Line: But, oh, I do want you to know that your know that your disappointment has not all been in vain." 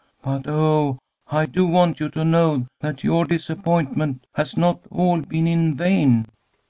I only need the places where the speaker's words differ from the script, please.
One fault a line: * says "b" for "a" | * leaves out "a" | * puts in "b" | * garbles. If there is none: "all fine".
* leaves out "know that your"